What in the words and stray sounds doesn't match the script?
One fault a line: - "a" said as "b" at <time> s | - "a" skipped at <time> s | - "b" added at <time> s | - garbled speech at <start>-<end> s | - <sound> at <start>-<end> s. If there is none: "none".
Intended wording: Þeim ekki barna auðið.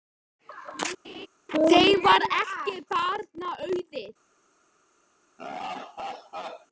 - laugh at 1.0-1.3 s
- "varð" added at 2.1 s
- laugh at 5.4-6.7 s